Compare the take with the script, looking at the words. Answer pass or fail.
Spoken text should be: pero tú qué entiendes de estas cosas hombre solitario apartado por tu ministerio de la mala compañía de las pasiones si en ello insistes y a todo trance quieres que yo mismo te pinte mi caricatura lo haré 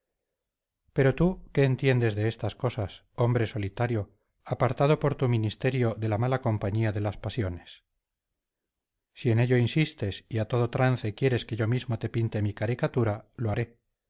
pass